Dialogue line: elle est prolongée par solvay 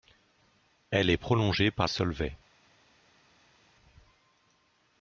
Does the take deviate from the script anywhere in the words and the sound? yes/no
no